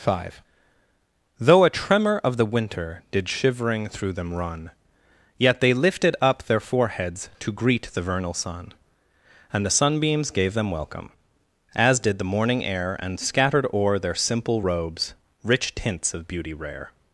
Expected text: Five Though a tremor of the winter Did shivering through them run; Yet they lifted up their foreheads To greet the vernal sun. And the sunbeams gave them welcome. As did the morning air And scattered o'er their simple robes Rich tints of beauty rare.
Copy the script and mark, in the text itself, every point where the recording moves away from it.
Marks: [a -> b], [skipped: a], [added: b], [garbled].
Five Though a tremor of the winter Did shivering through them run; Yet they lifted up their foreheads To greet the vernal sun. And the sunbeams gave them welcome. As did the morning air And scattered o'er their simple robes Rich tints of beauty rare.